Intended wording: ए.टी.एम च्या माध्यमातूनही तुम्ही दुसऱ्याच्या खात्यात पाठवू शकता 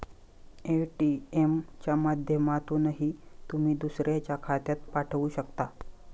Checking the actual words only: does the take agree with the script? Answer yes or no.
yes